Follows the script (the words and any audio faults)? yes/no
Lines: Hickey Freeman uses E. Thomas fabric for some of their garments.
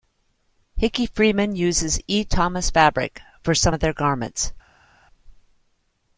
yes